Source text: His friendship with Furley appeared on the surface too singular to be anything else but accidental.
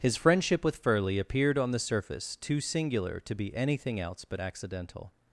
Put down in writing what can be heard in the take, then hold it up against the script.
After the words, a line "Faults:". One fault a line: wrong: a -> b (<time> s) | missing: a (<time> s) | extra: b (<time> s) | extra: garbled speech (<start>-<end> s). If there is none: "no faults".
His friendship with Furley appeared on the surface too singular to be anything else but accidental.
Faults:
no faults